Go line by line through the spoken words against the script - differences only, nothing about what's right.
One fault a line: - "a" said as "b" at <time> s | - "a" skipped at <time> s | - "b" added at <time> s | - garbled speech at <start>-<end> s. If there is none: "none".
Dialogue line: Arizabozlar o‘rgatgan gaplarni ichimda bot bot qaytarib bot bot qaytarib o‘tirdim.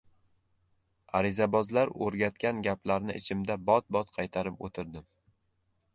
- "bot bot qaytarib" skipped at 4.7 s